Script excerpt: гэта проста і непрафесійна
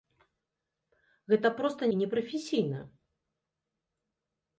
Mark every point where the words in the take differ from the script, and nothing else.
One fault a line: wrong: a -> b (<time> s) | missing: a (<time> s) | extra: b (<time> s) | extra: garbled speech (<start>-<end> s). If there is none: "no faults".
no faults